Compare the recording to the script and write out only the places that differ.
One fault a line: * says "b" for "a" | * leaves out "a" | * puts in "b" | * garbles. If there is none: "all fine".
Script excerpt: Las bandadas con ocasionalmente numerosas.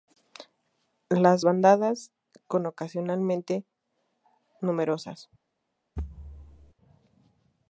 all fine